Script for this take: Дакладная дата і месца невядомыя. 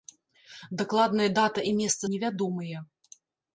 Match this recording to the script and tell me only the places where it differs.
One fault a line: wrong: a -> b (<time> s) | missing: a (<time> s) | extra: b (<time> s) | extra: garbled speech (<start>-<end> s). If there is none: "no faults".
no faults